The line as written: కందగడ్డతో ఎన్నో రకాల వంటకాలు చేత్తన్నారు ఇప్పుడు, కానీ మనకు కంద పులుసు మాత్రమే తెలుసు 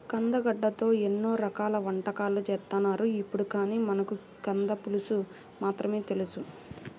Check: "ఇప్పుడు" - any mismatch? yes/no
no